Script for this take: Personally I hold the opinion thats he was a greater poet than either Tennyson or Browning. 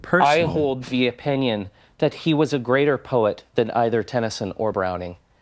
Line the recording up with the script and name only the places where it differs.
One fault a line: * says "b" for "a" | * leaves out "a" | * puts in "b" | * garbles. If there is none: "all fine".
* says "that" for "thats"